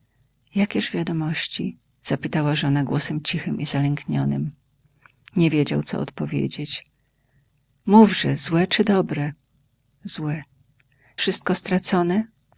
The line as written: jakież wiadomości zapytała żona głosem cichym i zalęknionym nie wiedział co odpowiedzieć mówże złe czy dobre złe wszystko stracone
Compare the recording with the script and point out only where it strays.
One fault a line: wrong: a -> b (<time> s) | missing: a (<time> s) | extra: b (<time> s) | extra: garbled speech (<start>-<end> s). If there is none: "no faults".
no faults